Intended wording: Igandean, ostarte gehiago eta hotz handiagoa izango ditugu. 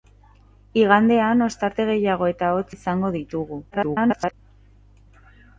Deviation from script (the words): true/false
true